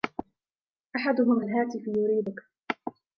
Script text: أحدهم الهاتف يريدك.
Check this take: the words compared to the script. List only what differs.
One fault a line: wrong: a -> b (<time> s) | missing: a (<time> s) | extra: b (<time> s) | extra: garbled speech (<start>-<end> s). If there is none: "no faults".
no faults